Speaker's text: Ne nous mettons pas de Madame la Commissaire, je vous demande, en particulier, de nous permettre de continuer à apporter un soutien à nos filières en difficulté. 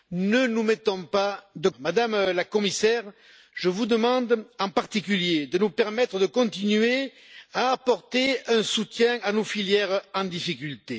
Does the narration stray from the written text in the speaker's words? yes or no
no